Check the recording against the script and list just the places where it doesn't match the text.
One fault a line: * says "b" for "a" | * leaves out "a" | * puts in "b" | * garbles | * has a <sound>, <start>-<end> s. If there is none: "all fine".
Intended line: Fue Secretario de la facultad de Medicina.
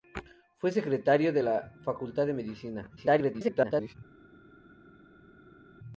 * garbles